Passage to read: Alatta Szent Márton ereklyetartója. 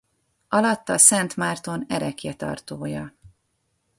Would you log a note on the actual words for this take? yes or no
no